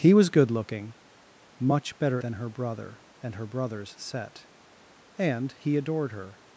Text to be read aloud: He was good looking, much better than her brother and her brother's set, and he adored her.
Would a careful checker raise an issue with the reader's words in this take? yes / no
no